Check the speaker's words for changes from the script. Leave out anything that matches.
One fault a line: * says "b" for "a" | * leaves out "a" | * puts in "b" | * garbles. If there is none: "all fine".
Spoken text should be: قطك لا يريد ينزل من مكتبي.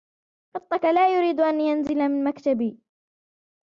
* puts in "أن"